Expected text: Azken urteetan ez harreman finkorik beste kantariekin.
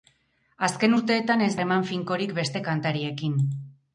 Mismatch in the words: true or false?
false